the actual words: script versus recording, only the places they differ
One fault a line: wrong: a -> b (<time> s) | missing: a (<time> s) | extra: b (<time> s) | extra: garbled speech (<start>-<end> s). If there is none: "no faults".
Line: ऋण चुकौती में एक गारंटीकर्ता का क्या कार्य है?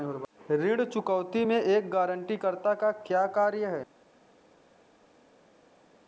no faults